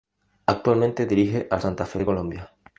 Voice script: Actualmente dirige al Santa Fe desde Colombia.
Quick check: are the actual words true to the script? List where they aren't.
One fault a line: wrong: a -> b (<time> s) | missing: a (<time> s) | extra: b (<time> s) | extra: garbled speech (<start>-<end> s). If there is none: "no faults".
wrong: desde -> de (2.0 s)